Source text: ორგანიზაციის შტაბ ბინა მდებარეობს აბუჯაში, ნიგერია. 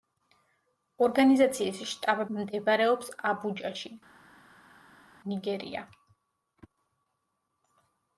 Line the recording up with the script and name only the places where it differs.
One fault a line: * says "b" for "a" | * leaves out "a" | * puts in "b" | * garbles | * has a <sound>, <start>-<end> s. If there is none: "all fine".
* leaves out "ბინა"